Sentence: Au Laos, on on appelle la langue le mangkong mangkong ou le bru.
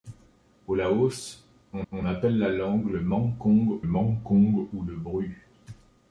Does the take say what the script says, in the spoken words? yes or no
yes